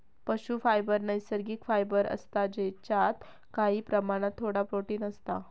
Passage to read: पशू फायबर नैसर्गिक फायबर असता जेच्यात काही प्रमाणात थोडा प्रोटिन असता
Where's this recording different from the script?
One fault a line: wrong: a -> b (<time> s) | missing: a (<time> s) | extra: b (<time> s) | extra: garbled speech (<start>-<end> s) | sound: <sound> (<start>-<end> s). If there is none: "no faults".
no faults